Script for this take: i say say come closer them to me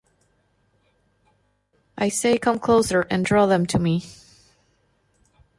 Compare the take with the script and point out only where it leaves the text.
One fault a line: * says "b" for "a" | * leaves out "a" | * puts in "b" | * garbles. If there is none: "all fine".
* leaves out "say"
* puts in "and draw"